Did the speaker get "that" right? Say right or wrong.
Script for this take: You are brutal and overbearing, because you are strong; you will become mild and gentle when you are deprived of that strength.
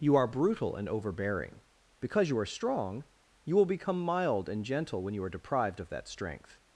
right